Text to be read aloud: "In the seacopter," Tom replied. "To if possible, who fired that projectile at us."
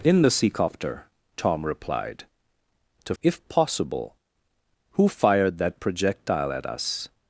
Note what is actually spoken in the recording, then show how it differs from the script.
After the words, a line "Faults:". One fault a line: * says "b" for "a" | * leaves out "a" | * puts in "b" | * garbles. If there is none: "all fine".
"In the seacopter," Tom replied. "To if possible, who fired that projectile at us."
Faults:
all fine